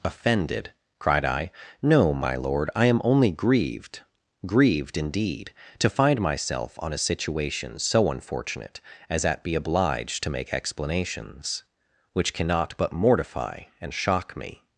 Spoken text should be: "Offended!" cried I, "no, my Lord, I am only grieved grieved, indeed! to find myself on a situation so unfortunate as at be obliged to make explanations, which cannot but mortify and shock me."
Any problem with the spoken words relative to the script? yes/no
no